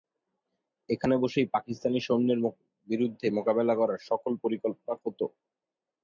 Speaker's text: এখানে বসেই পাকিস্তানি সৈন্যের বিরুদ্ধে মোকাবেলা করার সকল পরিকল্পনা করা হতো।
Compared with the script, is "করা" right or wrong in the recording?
wrong